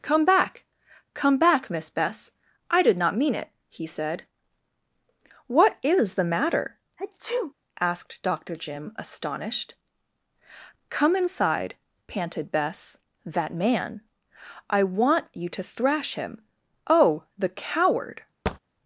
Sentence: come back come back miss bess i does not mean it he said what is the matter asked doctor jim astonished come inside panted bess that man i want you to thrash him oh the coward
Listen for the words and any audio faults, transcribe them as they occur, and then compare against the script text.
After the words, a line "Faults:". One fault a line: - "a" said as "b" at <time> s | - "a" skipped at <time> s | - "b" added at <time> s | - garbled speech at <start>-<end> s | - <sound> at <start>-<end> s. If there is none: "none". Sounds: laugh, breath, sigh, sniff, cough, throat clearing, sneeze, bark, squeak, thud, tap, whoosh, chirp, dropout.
come back come back miss bess i did not mean it he said what is the matter asked doctor jim astonished come inside panted bess that man i want you to thrash him oh the coward
Faults:
- "does" said as "did" at 2.8 s
- sneeze at 7.0-7.5 s
- thud at 18.5-18.6 s